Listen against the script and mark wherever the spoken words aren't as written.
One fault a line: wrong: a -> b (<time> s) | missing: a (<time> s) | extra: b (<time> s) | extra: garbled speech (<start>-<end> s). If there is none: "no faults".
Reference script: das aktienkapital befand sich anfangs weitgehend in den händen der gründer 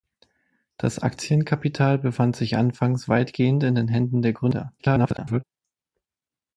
extra: garbled speech (4.8-5.4 s)